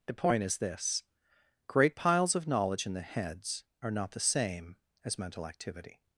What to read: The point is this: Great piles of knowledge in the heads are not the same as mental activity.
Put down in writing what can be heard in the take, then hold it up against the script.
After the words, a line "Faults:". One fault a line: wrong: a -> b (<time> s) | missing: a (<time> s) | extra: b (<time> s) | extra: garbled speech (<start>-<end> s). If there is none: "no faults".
The point is this: Great piles of knowledge in the heads are not the same as mental activity.
Faults:
no faults